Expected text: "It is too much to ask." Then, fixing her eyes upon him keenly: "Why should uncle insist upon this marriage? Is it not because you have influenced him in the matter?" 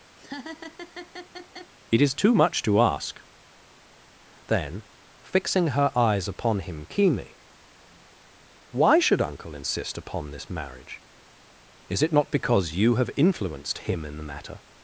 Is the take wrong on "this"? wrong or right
right